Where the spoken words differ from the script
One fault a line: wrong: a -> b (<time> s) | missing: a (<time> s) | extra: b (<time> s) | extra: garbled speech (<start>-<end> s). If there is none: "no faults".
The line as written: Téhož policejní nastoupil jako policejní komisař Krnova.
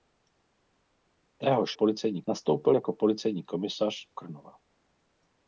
no faults